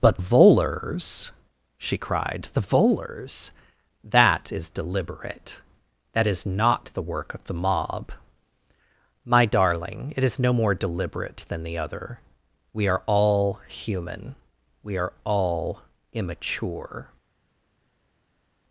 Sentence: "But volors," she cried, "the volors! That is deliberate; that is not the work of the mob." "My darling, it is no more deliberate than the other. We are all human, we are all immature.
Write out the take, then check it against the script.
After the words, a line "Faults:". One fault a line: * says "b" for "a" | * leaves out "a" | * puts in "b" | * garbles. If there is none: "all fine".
"But volors," she cried, "the volors! That is deliberate; that is not the work of the mob." "My darling, it is no more deliberate than the other. We are all human, we are all immature.
Faults:
all fine